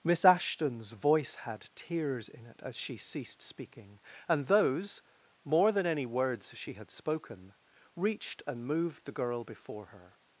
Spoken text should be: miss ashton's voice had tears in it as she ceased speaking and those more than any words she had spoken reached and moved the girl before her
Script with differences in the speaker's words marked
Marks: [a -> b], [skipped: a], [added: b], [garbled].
miss ashton's voice had tears in it as she ceased speaking and those more than any words she had spoken reached and moved the girl before her